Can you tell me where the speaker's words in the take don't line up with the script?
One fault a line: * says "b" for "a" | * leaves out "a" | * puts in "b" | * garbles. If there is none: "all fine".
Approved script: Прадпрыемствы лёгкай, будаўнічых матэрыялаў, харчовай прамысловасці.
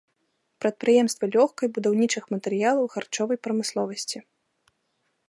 all fine